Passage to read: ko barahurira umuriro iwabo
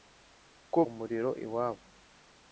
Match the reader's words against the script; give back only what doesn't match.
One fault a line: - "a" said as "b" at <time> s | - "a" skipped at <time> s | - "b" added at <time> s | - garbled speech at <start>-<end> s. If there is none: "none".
- "barahurira" skipped at 0.8 s